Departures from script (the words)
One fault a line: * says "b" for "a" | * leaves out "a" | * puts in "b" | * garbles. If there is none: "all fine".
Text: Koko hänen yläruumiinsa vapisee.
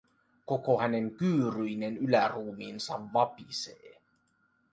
* puts in "kyyryinen"